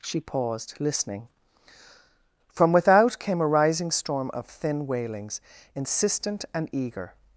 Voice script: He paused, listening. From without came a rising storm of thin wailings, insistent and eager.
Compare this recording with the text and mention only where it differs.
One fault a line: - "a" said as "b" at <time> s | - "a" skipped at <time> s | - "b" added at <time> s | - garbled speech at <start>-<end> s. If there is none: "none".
- "He" said as "She" at 0.0 s